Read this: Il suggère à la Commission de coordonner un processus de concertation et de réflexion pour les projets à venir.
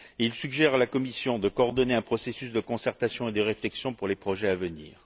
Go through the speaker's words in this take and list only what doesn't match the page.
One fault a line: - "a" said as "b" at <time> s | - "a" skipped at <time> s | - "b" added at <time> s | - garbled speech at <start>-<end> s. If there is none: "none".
none